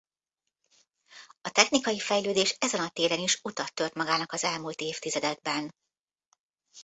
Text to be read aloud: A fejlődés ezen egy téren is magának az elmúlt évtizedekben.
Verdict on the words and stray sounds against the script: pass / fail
fail